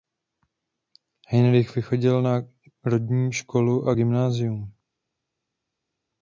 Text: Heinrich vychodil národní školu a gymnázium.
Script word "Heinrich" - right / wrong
right